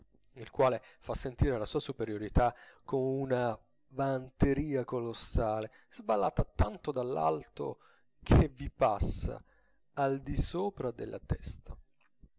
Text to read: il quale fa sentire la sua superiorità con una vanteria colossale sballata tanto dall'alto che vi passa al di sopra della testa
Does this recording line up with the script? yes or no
yes